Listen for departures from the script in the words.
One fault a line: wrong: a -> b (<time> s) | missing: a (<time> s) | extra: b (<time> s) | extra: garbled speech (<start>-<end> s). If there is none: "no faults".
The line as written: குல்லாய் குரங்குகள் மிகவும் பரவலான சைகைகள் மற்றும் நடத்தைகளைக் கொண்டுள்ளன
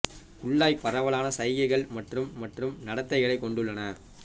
missing: குரங்குகள் மிகவும் (0.8 s)
extra: மற்றும் (2.4 s)